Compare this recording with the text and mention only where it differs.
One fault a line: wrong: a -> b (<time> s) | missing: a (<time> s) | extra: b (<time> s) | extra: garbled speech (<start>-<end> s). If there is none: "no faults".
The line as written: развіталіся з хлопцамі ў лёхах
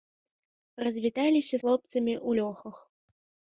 missing: з (1.6 s)